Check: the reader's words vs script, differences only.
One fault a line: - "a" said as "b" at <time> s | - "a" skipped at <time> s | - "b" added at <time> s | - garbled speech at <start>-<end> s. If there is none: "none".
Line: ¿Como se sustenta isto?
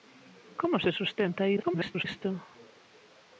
- garbled speech at 1.6-2.0 s